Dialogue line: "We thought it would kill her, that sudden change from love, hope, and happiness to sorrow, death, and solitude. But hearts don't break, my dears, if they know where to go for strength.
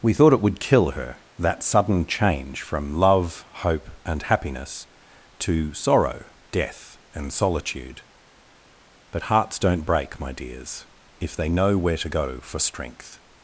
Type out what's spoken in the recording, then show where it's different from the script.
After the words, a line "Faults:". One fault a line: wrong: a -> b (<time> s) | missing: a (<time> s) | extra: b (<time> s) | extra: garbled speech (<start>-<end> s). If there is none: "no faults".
"We thought it would kill her, that sudden change from love, hope, and happiness to sorrow, death, and solitude. But hearts don't break, my dears, if they know where to go for strength.
Faults:
no faults